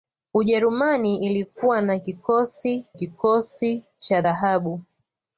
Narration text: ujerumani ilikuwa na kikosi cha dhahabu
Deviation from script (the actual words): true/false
true